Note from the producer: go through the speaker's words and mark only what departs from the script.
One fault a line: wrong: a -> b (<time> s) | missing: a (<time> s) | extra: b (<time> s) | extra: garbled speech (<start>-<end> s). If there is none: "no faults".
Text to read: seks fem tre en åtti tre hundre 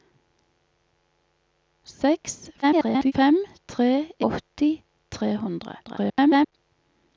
extra: garbled speech (2.6-3.1 s)
missing: en (3.9 s)
extra: garbled speech (5.8-6.5 s)